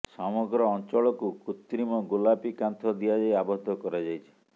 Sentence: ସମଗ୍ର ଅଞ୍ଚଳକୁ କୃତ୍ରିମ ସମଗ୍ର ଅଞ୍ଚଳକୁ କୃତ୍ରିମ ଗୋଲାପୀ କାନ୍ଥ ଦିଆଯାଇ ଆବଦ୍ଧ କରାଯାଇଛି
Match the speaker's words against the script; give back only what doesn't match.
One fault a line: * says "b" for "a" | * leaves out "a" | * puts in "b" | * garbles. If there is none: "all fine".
* leaves out "ସମଗ୍ର ଅଞ୍ଚଳକୁ କୃତ୍ରିମ"